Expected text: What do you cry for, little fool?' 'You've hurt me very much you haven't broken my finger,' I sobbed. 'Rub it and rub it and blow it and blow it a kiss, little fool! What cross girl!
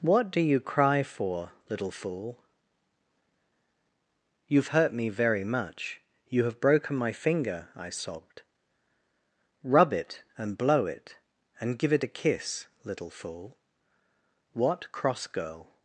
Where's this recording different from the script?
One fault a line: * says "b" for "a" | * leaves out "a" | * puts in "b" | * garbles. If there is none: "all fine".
* says "have" for "haven't"
* leaves out "rub it and"
* says "give" for "blow"